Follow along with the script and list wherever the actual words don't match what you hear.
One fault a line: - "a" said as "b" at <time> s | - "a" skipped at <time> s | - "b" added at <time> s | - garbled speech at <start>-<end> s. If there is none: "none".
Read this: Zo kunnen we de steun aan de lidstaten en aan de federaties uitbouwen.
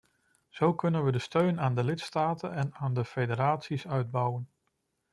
none